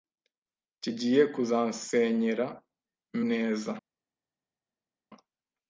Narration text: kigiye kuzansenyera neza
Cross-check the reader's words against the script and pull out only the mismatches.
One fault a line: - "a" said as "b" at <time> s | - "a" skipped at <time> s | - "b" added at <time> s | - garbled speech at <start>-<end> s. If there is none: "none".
none